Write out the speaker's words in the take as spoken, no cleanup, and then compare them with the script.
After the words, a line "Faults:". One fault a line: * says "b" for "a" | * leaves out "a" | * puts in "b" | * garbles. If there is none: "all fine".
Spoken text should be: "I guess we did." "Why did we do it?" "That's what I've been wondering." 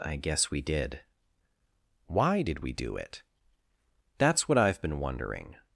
"I guess we did." "Why did we do it?" "That's what I've been wondering."
Faults:
all fine